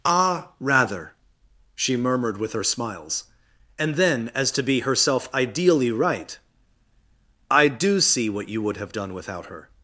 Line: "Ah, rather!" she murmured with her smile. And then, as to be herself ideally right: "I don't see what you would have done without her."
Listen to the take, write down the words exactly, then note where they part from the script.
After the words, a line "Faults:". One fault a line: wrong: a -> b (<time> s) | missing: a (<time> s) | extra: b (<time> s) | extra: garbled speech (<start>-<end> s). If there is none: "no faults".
"Ah, rather!" she murmured with her smiles. And then, as to be herself ideally right: "I do see what you would have done without her."
Faults:
wrong: smile -> smiles (2.6 s)
wrong: don't -> do (7.7 s)